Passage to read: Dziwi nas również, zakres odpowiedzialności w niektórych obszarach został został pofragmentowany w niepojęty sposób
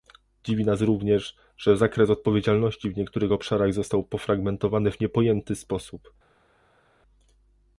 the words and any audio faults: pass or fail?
fail